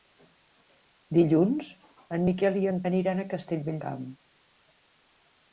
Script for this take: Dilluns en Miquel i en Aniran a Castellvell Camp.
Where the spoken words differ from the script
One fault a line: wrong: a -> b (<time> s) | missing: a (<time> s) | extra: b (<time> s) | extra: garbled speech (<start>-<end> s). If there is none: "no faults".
no faults